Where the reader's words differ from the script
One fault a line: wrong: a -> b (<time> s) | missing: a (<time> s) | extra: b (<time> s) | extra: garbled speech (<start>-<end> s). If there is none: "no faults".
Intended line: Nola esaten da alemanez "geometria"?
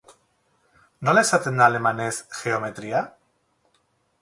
no faults